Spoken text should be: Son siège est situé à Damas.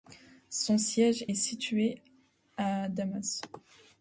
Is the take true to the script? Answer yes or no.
yes